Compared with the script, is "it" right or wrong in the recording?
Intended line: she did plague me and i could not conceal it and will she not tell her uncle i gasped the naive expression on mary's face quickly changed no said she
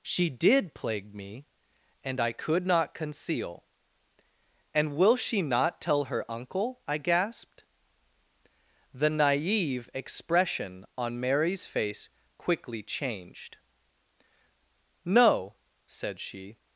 wrong